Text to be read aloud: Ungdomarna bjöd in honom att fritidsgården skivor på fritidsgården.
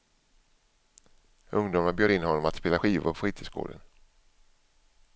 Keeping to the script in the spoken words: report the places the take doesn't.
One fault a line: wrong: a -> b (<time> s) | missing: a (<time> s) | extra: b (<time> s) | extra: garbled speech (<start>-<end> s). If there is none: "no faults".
wrong: fritidsgården -> spela (2.5 s)